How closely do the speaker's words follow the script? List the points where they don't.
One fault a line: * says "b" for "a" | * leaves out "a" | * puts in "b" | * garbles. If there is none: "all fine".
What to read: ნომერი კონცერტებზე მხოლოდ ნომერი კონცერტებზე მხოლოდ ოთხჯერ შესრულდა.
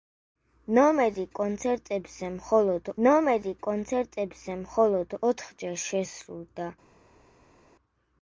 all fine